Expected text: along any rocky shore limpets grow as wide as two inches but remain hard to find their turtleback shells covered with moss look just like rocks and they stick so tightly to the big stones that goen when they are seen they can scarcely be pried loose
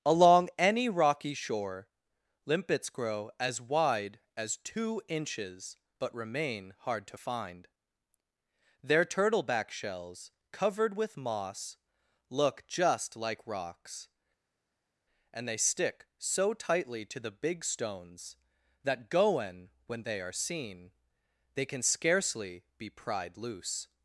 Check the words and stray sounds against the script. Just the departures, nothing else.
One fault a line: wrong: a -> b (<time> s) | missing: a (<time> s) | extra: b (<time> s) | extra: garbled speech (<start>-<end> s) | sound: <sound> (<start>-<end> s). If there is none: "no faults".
no faults